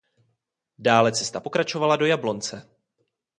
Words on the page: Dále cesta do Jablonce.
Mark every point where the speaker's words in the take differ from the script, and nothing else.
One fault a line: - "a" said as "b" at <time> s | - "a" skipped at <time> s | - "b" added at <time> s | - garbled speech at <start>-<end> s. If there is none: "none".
- "pokračovala" added at 1.4 s